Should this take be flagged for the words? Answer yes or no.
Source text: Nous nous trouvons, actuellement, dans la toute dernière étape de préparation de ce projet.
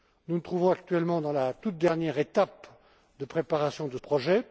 yes